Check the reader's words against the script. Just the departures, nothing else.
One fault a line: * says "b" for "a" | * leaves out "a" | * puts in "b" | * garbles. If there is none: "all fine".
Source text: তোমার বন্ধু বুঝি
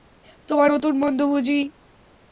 * puts in "নতুন"